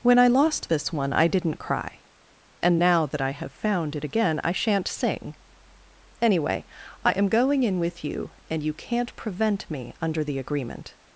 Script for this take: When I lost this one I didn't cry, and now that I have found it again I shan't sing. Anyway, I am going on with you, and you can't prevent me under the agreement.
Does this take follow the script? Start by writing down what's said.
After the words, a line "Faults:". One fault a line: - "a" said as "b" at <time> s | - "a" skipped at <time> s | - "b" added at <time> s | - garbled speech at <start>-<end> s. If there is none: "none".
When I lost this one I didn't cry, and now that I have found it again I shan't sing. Anyway, I am going in with you, and you can't prevent me under the agreement.
Faults:
- "on" said as "in" at 7.6 s